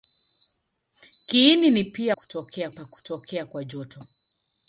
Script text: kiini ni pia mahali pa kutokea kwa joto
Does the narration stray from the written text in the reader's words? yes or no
yes